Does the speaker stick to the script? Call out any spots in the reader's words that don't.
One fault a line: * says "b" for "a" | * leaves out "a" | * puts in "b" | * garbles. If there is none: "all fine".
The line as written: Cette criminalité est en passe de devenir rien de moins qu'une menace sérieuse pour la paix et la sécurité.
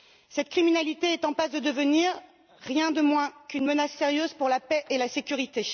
all fine